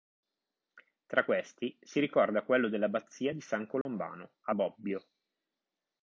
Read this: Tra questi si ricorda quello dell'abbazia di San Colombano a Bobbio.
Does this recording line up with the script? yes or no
yes